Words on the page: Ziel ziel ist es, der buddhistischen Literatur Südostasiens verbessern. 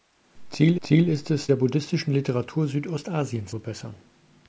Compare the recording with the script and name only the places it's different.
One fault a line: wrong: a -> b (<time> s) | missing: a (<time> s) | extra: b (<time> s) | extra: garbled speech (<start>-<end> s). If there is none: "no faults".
no faults